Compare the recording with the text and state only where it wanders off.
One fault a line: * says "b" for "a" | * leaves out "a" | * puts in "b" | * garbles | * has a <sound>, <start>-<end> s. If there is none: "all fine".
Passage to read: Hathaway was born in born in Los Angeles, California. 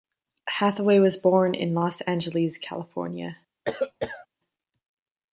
* leaves out "born in"
* has a cough, 3.7-4.3 s